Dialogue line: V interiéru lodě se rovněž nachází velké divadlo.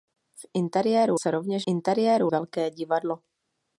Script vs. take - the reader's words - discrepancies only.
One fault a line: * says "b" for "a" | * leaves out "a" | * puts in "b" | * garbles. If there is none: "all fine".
* leaves out "lodě"
* says "interiéru" for "nachází"